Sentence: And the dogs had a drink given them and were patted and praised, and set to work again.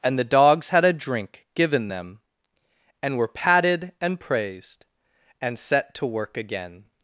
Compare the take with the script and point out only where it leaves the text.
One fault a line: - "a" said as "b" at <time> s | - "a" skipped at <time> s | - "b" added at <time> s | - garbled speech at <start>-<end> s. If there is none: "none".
none